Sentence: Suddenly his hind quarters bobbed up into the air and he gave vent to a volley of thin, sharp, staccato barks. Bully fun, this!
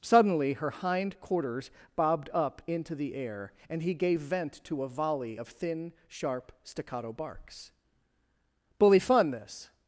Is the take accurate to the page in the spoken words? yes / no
no